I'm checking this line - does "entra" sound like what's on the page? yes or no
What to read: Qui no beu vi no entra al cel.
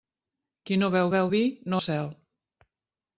no